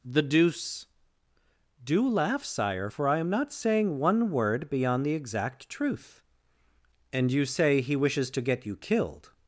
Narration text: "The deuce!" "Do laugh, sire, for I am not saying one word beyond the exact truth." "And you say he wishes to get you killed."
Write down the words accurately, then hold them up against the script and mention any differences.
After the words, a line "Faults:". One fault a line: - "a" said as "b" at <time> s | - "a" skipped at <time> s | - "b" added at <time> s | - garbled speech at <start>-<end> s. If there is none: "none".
"The deuce!" "Do laugh, sire, for I am not saying one word beyond the exact truth." "And you say he wishes to get you killed."
Faults:
none